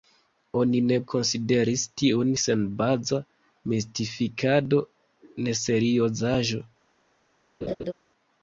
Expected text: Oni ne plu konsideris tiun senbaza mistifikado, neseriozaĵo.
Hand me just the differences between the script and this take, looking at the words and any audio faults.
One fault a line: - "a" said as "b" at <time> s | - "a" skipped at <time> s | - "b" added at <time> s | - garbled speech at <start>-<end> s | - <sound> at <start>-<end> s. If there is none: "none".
- "plu" skipped at 0.9 s
- laugh at 7.6-7.9 s